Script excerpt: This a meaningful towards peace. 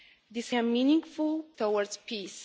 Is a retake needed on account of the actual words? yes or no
no